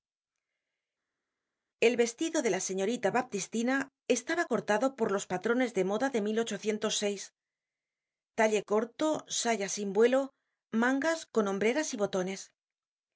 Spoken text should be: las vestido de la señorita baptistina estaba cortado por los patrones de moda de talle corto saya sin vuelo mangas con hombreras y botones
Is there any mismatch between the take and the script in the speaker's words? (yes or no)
yes